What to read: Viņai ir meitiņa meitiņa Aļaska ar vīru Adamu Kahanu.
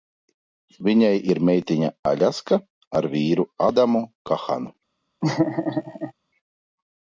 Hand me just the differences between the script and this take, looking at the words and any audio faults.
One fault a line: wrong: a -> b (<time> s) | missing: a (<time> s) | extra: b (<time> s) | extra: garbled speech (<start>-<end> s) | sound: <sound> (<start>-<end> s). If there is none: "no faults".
missing: meitiņa (1.9 s)
sound: laugh (5.2-6.1 s)